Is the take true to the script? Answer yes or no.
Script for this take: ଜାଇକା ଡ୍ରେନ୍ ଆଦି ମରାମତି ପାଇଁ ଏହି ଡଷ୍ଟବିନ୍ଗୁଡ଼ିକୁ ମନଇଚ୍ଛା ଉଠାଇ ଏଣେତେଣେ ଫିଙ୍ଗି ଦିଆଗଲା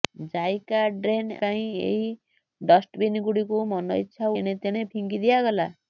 no